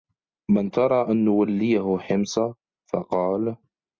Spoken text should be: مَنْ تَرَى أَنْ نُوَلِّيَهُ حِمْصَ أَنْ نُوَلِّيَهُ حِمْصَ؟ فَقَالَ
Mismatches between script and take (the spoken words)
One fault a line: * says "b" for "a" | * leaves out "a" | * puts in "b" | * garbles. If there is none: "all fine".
* leaves out "أَنْ نُوَلِّيَهُ حِمْصَ"